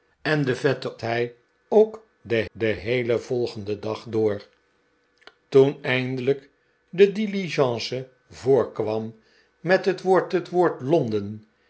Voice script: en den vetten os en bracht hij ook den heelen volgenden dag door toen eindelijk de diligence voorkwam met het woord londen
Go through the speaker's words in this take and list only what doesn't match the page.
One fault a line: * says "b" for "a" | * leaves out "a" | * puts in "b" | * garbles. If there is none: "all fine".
* leaves out "os en bracht"
* puts in "den"
* puts in "het woord"